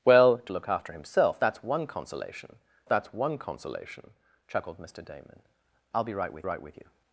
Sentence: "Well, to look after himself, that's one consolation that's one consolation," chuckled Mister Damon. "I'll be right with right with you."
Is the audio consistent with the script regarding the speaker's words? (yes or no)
yes